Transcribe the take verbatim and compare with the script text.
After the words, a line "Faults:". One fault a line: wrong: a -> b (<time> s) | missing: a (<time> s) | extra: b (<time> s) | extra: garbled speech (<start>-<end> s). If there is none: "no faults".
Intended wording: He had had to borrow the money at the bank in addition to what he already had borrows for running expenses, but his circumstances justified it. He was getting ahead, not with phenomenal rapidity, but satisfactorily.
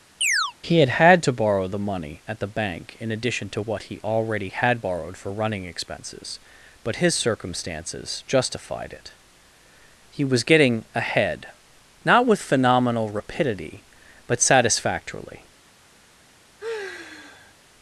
He had had to borrow the money at the bank in addition to what he already had borrowed for running expenses, but his circumstances justified it. He was getting ahead, not with phenomenal rapidity, but satisfactorily.
Faults:
wrong: borrows -> borrowed (4.8 s)